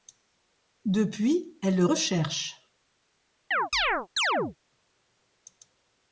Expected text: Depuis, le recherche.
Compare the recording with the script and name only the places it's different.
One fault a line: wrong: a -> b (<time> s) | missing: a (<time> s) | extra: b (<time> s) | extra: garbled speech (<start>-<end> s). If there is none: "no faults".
extra: elle (1.6 s)